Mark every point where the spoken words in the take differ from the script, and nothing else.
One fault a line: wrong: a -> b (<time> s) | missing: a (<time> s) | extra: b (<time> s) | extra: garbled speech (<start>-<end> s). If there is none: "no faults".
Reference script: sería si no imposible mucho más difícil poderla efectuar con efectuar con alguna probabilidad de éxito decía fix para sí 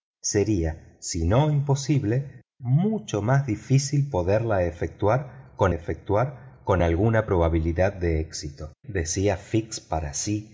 no faults